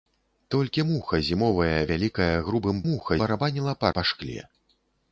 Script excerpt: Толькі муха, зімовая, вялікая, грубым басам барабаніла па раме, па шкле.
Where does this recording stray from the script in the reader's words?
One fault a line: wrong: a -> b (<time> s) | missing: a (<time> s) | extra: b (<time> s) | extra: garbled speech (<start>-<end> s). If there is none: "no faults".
wrong: басам -> муха (2.9 s)
missing: раме (3.9 s)